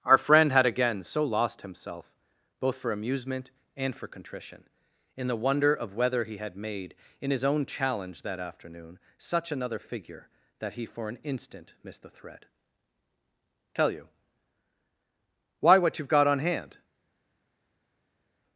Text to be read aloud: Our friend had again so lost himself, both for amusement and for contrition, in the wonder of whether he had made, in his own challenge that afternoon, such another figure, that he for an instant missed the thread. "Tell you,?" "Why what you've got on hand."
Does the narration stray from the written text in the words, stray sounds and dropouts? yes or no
no